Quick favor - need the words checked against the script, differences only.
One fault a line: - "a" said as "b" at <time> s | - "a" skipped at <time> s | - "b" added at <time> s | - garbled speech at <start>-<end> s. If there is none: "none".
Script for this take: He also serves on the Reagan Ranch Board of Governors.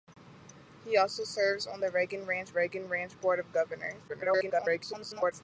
- "Reagan Ranch" added at 2.5 s
- garbled speech at 4.1-5.3 s